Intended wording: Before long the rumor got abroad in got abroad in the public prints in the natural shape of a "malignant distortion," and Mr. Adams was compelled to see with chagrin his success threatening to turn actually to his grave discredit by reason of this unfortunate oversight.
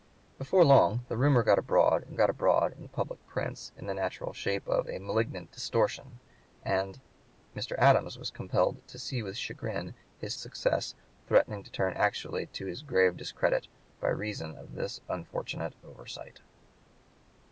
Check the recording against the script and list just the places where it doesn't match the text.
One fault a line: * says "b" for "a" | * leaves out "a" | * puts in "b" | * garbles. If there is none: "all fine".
all fine